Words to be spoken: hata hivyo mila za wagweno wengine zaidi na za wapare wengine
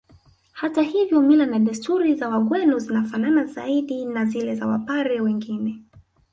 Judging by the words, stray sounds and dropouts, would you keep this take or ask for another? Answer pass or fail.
fail